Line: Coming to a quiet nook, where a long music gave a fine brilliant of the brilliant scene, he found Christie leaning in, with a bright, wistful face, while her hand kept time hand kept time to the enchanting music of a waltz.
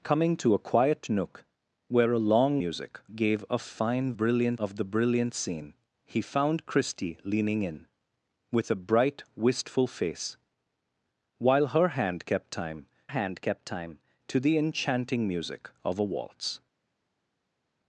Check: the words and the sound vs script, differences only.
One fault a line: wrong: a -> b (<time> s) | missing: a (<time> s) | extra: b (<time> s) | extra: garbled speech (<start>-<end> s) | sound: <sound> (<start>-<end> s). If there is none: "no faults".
no faults